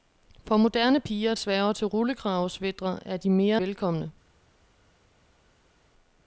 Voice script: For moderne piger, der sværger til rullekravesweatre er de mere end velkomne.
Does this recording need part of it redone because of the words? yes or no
yes